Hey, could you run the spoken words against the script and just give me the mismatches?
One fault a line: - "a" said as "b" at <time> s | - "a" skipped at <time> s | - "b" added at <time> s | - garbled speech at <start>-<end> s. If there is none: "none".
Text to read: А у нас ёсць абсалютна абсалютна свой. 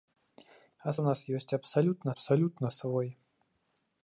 none